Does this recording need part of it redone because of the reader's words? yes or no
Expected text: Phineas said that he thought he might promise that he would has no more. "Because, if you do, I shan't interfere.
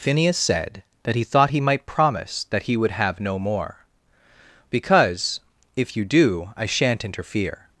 yes